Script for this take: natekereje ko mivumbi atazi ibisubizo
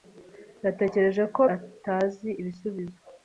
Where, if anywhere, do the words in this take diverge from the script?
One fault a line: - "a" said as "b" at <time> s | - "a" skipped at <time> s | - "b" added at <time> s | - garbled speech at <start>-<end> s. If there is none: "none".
- "mivumbi" skipped at 1.4 s